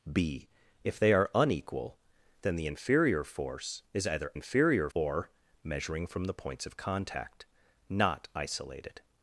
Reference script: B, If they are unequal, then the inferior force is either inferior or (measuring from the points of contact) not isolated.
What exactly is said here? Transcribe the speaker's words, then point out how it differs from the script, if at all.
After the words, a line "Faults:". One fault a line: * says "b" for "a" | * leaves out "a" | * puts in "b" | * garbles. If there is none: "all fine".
B, If they are unequal, then the inferior force is either inferior or (measuring from the points of contact) not isolated.
Faults:
all fine